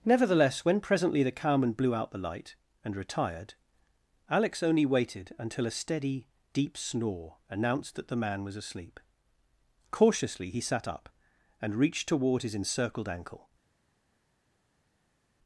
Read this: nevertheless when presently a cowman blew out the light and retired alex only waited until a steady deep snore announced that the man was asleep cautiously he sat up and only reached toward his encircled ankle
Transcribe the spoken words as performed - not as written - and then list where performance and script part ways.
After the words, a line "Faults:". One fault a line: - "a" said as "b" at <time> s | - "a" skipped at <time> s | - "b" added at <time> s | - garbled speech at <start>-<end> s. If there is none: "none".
nevertheless when presently the cowman blew out the light and retired alex only waited until a steady deep snore announced that the man was asleep cautiously he sat up and reached toward his encircled ankle
Faults:
- "a" said as "the" at 1.2 s
- "only" skipped at 11.8 s